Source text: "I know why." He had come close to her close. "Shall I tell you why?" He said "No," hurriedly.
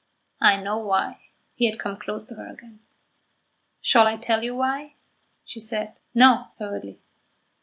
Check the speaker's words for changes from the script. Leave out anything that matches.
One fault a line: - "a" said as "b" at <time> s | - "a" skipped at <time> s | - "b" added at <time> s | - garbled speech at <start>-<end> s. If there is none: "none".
- "close" said as "again" at 2.5 s
- "He" said as "She" at 5.4 s